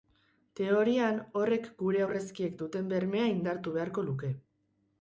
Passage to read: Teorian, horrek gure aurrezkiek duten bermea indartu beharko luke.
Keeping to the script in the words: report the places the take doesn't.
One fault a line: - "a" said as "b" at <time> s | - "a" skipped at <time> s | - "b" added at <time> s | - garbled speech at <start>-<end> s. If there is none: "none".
none